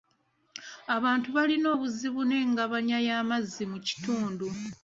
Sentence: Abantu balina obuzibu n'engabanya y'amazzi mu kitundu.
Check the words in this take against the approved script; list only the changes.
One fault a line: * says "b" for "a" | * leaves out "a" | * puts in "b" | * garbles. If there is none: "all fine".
all fine